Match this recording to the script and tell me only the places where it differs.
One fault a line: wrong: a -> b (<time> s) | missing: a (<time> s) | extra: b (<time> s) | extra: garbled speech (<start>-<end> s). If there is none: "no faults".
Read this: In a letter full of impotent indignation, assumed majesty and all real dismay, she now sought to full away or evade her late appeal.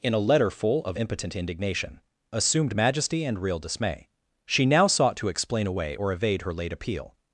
missing: all (3.4 s)
wrong: full -> explain (5.3 s)